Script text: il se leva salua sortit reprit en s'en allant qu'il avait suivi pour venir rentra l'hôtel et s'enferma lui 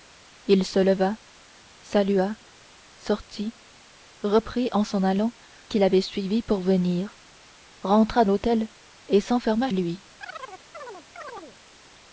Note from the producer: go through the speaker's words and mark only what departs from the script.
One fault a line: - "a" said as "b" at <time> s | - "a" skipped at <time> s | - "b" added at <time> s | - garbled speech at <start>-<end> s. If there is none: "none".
none